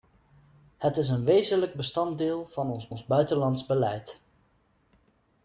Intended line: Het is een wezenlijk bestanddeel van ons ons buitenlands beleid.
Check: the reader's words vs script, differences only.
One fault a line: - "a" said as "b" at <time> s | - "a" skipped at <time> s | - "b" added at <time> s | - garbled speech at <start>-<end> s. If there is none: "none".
none